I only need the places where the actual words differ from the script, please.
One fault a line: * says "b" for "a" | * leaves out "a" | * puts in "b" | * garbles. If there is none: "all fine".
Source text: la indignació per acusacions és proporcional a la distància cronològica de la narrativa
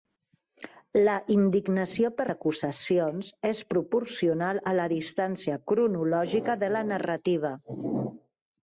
all fine